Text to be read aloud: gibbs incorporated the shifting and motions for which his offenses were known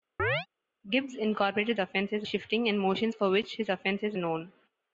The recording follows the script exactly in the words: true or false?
false